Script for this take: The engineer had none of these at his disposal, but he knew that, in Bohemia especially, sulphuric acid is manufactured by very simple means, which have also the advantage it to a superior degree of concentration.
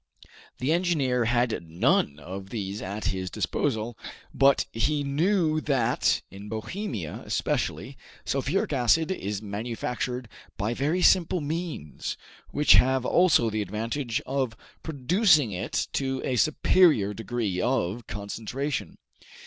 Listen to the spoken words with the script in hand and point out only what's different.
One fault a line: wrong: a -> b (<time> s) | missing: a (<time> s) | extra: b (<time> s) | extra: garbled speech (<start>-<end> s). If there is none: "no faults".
extra: of producing (14.2 s)